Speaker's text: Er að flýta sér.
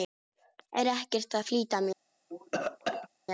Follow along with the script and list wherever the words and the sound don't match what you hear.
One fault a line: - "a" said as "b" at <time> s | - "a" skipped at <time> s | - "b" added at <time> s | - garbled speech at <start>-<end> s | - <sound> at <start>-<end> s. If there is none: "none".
- "ekkert" added at 0.9 s
- cough at 2.3-3.1 s